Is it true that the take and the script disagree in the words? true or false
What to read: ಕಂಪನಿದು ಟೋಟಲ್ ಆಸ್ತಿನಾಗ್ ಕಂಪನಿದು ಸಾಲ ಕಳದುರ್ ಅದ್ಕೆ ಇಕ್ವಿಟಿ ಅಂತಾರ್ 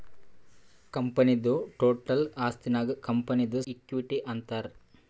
true